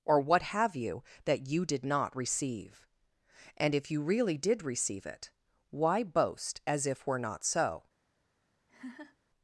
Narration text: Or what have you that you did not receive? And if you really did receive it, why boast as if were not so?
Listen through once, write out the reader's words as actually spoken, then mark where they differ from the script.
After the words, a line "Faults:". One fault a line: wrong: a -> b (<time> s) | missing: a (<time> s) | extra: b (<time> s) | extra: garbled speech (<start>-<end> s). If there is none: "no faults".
Or what have you that you did not receive? And if you really did receive it, why boast as if were not so?
Faults:
no faults